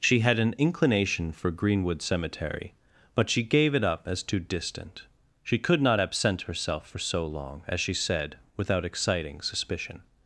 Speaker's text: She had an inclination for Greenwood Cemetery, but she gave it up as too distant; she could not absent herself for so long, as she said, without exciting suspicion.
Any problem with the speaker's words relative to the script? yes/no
no